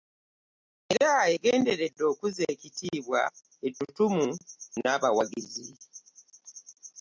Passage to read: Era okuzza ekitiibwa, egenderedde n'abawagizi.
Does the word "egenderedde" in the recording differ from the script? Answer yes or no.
yes